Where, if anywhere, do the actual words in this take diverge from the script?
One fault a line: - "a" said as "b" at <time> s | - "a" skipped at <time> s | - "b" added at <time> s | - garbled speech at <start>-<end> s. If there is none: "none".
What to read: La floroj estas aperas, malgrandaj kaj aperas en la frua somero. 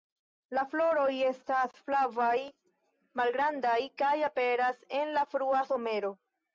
- "aperas" said as "flavaj" at 1.9 s